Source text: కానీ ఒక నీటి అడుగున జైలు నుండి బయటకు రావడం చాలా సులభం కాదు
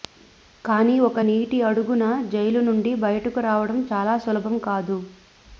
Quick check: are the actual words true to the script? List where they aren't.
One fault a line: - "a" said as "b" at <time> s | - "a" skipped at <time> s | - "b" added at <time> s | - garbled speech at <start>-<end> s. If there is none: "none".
none